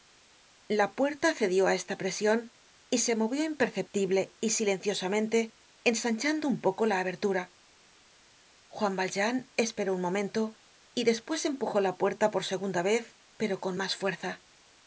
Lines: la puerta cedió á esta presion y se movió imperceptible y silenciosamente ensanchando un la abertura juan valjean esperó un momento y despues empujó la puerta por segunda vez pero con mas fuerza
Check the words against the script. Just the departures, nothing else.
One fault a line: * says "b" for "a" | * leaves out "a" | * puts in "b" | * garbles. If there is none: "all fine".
* puts in "poco"